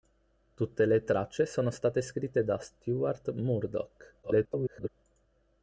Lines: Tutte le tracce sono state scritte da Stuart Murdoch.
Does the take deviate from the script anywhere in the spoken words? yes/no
yes